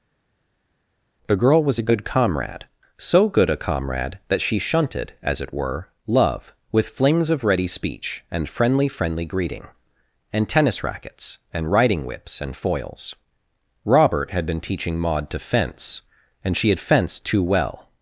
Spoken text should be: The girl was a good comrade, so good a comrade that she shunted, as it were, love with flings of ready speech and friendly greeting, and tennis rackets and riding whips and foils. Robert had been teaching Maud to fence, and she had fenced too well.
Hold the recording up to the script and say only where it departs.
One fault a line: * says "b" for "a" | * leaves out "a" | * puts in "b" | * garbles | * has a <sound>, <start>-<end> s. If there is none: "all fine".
* puts in "friendly"